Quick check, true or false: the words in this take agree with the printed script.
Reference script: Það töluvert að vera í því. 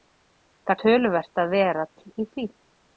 true